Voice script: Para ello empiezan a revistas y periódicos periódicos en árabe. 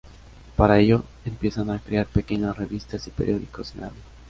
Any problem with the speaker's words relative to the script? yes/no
yes